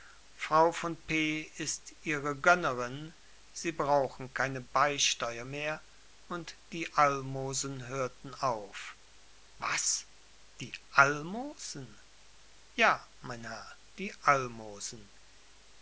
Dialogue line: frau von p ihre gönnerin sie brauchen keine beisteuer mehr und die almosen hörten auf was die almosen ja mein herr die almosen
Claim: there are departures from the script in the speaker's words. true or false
true